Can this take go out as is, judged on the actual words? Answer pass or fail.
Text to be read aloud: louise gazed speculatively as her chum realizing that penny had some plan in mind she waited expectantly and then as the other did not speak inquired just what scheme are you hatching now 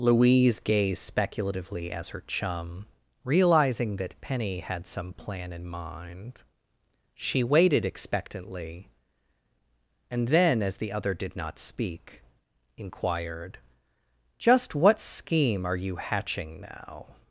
pass